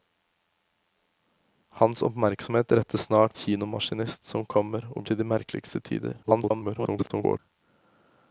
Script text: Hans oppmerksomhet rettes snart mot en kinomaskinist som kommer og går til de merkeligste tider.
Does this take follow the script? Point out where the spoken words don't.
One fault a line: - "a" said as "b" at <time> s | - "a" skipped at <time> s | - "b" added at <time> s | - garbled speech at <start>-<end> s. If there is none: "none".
- "mot en" skipped at 3.4 s
- "går" skipped at 5.0 s
- garbled speech at 6.2-7.4 s